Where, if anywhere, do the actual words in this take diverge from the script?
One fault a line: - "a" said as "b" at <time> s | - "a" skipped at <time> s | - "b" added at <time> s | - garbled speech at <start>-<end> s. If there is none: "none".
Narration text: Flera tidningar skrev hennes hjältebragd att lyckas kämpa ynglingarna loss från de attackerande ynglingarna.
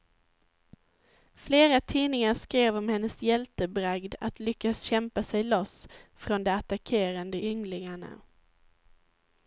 - "om" added at 2.8 s
- "ynglingarna" said as "sig" at 5.2 s